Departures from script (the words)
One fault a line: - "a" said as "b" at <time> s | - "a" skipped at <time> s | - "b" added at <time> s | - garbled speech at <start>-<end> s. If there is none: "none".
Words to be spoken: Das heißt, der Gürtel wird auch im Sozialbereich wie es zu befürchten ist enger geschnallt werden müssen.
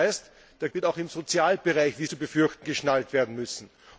- "Gürtel" skipped at 0.7 s
- "es" skipped at 2.0 s
- "ist enger" skipped at 2.7 s